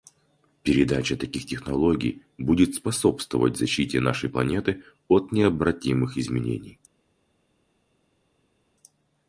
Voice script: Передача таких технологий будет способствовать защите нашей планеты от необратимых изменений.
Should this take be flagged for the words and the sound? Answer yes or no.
no